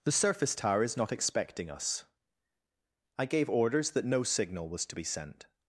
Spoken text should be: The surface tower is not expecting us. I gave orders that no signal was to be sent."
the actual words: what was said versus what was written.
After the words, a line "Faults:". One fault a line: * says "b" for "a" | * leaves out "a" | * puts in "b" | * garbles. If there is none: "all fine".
The surface tower is not expecting us. I gave orders that no signal was to be sent."
Faults:
all fine